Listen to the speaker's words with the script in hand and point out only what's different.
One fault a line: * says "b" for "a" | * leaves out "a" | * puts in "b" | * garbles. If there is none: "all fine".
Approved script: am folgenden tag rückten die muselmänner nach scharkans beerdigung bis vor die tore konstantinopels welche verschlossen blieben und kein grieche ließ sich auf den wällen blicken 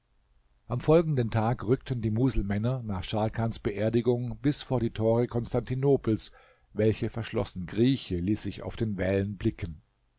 * leaves out "blieben und kein"